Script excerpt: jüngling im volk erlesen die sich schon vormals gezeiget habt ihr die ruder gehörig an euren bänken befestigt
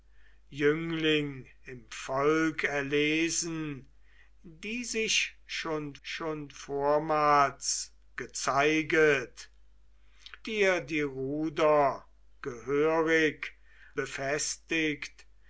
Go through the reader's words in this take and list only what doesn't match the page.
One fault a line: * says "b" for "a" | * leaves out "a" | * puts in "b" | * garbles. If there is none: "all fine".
* puts in "schon"
* leaves out "habt"
* leaves out "an euren bänken"